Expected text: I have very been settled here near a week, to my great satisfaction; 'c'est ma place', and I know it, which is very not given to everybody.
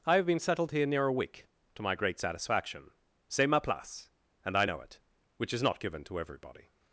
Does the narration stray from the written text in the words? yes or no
yes